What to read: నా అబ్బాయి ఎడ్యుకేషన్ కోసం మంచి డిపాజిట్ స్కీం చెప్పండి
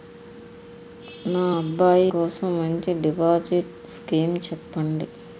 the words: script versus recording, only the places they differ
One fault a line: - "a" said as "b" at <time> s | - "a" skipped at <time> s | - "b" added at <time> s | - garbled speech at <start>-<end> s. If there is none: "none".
- "ఎడ్యుకేషన్" skipped at 2.1 s